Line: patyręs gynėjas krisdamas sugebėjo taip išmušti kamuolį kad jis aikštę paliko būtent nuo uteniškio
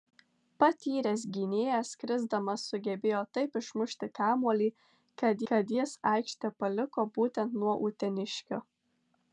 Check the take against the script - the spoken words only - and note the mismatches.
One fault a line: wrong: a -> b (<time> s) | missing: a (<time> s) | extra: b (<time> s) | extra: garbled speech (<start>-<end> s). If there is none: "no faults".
extra: kad (5.5 s)